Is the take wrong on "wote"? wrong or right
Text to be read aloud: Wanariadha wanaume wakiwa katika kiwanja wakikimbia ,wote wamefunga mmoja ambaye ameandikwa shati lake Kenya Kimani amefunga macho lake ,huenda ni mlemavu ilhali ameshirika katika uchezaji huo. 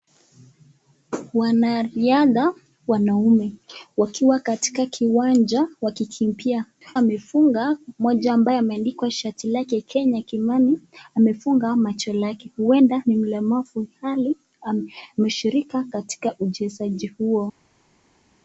wrong